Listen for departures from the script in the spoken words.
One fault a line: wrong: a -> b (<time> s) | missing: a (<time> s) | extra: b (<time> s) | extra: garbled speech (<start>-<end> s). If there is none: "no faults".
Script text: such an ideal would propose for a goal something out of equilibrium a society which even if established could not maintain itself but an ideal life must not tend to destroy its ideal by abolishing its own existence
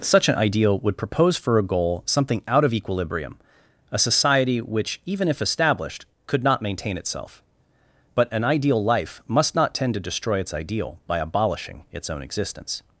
no faults